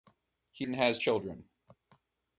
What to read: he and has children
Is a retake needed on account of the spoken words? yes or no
no